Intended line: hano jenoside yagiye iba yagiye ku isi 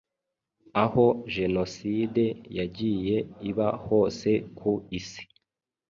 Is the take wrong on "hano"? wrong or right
wrong